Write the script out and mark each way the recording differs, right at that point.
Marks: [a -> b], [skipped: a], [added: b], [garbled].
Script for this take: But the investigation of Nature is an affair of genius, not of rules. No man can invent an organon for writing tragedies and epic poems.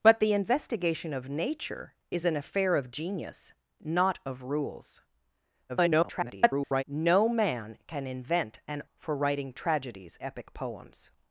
But the investigation of Nature is an affair of genius, not of rules. [garbled] No man can invent an [skipped: organon] for writing tragedies [skipped: and] epic poems.